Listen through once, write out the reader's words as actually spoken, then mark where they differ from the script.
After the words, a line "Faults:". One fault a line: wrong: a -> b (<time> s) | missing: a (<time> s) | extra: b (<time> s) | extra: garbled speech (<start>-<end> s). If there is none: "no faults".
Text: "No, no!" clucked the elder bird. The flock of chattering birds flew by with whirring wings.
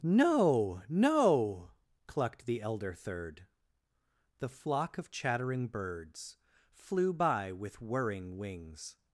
"No, no!" clucked the elder third. The flock of chattering birds flew by with whirring wings.
Faults:
wrong: bird -> third (2.9 s)